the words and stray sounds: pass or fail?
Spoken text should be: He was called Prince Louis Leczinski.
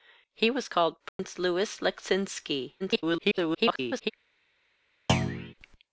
fail